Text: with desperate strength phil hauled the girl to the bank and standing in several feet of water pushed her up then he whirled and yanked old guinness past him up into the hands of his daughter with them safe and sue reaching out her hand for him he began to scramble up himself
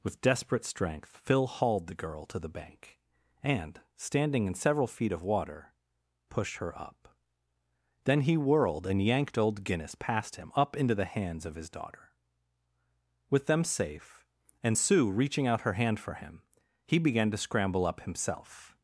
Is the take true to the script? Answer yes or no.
yes